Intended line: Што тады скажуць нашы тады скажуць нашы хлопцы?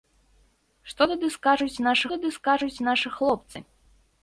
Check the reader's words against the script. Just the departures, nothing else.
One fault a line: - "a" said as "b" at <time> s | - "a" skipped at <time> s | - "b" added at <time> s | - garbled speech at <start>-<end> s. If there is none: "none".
none